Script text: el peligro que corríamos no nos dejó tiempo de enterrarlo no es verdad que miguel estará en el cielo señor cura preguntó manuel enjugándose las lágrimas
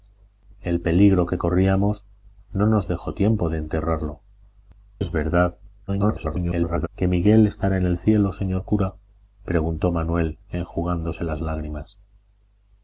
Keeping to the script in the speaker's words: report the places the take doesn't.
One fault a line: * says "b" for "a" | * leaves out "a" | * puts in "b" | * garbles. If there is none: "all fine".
* leaves out "no"
* garbles